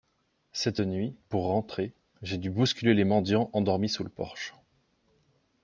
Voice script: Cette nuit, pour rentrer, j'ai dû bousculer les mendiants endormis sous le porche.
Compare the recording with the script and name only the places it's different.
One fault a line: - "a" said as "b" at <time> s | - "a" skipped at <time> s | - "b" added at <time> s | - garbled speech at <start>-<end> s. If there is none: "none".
none